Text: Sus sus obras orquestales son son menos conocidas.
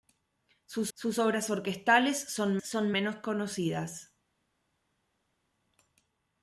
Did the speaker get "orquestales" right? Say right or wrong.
right